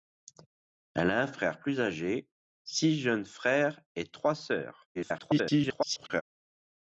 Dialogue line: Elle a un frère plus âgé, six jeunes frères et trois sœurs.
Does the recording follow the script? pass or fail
fail